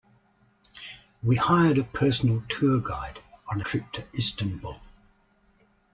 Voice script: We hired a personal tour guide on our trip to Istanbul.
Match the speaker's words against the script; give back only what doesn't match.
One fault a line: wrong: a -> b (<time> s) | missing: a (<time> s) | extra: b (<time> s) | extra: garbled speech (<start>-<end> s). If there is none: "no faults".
missing: our (3.6 s)